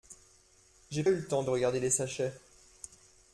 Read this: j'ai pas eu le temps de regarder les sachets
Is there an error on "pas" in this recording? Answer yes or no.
yes